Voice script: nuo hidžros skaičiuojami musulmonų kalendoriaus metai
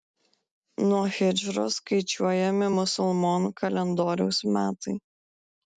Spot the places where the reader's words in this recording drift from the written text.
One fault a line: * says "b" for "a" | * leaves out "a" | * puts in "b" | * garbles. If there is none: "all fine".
all fine